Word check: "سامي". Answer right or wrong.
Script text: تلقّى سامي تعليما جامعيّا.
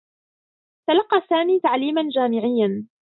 right